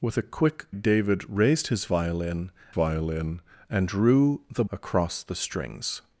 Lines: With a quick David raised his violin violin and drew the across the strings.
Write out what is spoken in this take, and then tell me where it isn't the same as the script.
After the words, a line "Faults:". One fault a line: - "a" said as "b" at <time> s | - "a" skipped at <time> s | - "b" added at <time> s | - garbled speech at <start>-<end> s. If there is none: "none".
With a quick David raised his violin violin and drew the across the strings.
Faults:
none